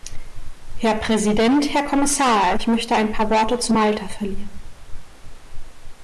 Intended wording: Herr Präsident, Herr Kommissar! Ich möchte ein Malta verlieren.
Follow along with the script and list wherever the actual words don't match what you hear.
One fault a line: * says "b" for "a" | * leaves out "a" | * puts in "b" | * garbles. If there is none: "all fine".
* puts in "paar Worte zu"